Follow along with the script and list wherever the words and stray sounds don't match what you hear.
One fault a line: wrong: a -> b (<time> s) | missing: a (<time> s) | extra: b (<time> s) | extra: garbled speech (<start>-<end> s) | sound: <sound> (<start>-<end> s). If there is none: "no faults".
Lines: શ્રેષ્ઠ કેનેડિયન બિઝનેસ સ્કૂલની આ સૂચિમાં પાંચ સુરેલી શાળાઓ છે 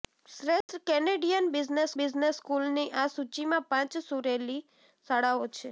sound: dropout (0.6-0.7 s)
extra: બિઝનેસ (2.0 s)